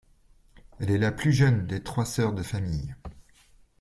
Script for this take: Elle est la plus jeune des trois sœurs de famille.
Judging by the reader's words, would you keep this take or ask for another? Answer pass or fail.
pass